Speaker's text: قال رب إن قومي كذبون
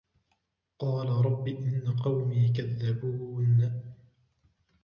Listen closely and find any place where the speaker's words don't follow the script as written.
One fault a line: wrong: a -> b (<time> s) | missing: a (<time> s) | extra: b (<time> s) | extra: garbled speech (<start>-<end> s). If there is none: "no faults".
no faults